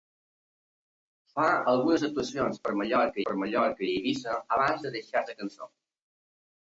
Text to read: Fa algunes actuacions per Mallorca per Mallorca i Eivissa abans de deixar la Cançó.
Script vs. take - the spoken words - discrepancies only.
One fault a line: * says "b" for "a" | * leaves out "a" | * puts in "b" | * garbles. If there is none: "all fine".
all fine